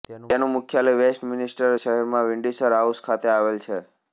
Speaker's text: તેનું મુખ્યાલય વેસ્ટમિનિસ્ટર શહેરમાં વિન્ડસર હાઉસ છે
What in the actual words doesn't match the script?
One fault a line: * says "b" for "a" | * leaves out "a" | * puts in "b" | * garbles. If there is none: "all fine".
* puts in "ખાતે આવેલ"